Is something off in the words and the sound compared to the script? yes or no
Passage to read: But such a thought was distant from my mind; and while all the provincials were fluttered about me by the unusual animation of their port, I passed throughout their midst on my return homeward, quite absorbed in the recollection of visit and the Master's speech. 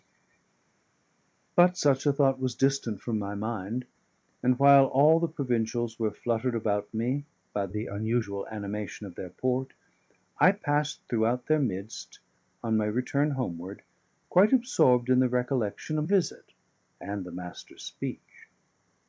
no